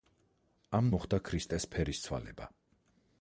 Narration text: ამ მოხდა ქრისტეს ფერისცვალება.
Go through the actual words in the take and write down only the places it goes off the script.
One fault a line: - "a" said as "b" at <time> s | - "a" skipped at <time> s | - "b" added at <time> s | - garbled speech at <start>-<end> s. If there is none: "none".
none